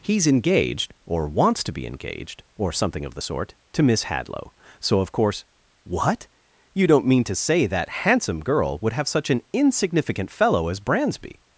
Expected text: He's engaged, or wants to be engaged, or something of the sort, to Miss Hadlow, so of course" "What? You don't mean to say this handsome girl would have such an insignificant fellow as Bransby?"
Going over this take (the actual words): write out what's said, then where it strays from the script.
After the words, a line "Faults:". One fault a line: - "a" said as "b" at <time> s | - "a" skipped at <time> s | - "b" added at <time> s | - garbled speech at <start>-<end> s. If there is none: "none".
He's engaged, or wants to be engaged, or something of the sort, to Miss Hadlow, so of course" "What? You don't mean to say that handsome girl would have such an insignificant fellow as Bransby?"
Faults:
- "this" said as "that" at 7.7 s